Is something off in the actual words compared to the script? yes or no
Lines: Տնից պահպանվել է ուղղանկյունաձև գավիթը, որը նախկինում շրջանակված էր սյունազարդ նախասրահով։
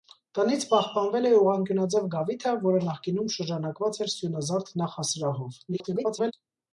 yes